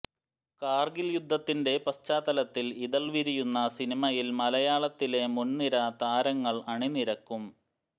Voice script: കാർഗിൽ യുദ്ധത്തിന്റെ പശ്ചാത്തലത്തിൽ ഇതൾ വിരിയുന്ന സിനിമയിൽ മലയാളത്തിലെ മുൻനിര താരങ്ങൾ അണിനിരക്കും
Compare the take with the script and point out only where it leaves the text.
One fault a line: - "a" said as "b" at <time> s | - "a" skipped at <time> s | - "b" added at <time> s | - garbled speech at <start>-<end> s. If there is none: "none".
none